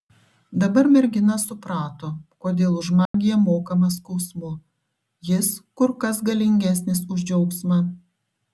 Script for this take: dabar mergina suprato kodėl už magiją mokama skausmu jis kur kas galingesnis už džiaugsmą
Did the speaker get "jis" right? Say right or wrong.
right